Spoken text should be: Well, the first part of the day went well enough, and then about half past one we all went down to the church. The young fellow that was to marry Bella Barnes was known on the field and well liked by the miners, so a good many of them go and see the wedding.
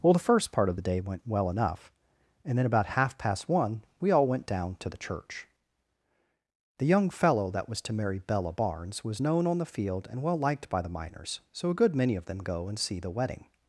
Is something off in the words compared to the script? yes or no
no